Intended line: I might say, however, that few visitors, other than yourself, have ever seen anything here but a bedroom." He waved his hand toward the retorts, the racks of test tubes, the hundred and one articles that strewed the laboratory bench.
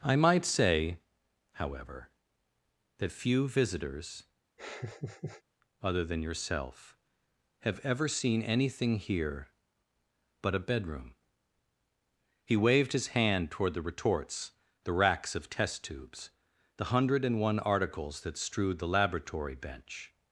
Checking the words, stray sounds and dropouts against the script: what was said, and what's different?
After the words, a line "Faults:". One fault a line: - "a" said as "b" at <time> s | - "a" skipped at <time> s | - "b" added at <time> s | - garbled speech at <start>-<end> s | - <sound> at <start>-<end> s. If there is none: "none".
I might say, however, that few visitors, other than yourself, have ever seen anything here but a bedroom." He waved his hand toward the retorts, the racks of test tubes, the hundred and one articles that strewed the laboratory bench.
Faults:
- laugh at 4.6-5.4 s